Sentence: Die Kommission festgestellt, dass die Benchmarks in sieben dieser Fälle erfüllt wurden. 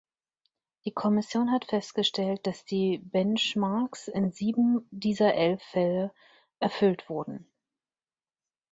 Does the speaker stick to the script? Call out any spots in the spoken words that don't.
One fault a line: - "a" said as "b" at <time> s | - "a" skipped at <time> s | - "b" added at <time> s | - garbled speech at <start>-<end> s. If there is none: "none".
- "hat" added at 1.5 s
- "elf" added at 5.3 s